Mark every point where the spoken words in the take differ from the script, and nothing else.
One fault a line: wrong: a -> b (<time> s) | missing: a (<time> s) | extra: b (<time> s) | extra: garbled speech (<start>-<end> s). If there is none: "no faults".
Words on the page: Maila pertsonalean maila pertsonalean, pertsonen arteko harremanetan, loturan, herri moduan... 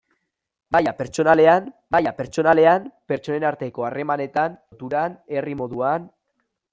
no faults